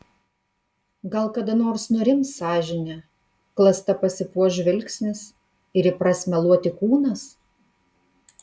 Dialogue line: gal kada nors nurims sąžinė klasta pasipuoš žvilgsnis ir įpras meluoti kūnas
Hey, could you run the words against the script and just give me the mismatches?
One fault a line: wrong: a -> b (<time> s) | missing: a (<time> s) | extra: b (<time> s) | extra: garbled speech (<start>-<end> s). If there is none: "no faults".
no faults